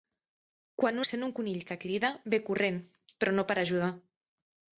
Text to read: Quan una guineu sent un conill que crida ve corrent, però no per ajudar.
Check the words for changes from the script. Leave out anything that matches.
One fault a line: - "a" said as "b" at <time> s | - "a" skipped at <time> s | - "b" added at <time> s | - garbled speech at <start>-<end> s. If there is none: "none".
- "una guineu" skipped at 1.0 s